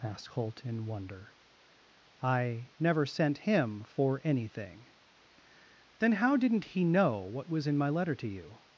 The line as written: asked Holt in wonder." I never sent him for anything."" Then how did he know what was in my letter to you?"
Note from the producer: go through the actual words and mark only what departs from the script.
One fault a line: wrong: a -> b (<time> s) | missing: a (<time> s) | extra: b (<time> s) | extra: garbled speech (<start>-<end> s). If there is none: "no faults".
wrong: did -> didn't (6.4 s)